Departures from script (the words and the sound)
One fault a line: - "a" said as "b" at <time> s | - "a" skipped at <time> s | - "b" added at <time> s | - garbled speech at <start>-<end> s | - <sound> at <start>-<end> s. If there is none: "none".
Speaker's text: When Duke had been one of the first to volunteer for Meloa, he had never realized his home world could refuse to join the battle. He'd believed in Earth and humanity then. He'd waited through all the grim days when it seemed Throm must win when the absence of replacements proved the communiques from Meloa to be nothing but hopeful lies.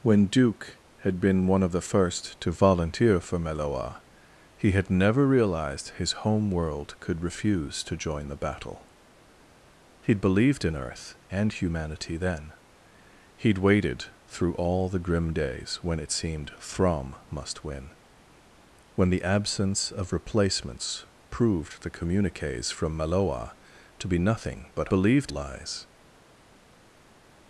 - "hopeful" said as "believed" at 24.9 s